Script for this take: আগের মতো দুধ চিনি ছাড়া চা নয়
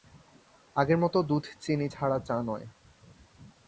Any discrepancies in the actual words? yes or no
no